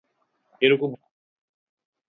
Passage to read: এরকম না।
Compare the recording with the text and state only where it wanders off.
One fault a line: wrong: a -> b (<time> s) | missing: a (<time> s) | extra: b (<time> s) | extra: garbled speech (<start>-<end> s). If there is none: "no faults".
no faults